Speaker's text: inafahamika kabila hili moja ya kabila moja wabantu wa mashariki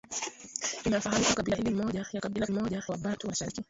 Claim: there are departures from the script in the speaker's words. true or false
false